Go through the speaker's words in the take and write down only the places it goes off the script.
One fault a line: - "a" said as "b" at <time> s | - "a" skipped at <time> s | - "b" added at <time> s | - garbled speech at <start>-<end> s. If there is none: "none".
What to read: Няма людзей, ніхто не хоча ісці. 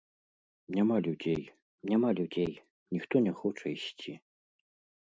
- "няма людзей" added at 1.9 s